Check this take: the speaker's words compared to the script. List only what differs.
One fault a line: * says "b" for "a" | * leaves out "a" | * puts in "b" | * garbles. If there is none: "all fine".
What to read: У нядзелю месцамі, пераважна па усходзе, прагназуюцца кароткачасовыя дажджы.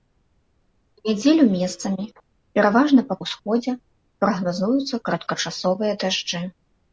all fine